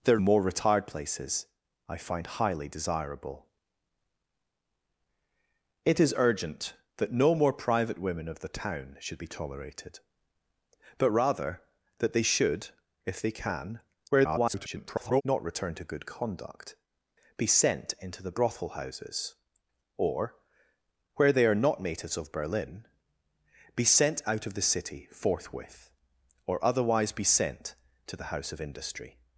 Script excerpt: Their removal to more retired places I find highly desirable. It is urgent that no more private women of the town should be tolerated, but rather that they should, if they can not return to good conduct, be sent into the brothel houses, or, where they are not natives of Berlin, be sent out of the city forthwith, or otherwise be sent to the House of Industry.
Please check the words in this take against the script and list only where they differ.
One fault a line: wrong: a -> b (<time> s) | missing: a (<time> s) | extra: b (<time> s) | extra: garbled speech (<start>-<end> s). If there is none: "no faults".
missing: removal to (0.2 s)
extra: garbled speech (14.1-15.2 s)